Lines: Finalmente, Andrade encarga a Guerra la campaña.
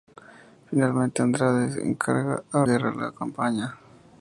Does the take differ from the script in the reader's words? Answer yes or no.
no